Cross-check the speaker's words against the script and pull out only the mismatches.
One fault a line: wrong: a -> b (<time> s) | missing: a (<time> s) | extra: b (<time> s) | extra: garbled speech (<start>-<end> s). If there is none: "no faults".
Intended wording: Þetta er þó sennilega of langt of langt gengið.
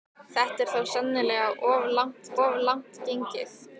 no faults